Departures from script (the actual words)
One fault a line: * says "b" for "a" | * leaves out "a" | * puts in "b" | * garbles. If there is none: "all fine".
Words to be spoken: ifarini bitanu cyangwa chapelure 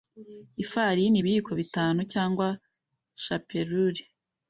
* puts in "ibiyiko"